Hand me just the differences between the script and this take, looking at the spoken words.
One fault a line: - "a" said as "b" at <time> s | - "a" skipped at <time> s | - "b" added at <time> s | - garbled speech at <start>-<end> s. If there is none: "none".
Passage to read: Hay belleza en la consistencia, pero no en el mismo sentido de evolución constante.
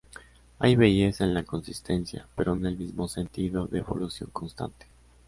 - "no" skipped at 2.6 s